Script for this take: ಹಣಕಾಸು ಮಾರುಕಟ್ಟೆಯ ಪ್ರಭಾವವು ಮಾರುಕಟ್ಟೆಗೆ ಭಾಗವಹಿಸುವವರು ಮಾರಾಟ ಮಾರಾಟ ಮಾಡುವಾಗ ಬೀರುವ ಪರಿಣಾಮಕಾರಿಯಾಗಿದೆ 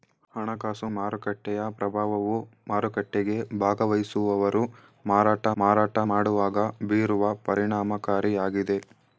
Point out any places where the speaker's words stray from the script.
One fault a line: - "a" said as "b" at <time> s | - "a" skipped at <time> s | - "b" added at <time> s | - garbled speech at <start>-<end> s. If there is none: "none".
none